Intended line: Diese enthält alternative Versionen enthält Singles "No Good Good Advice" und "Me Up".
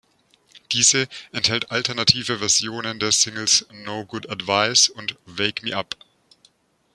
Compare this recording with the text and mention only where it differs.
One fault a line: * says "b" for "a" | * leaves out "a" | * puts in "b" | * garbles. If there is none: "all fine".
* says "der" for "enthält"
* leaves out "Good"
* puts in "Wake"